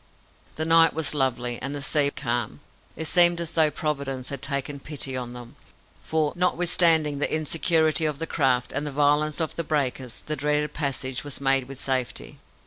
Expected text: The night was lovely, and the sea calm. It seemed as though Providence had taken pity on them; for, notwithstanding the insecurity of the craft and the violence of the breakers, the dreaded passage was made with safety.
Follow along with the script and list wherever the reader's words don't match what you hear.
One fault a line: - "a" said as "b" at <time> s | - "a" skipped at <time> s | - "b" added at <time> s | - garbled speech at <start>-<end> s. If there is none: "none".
none